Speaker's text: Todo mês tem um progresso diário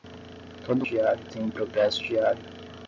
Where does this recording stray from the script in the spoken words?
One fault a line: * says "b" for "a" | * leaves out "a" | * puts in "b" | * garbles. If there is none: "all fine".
* says "diário" for "mês"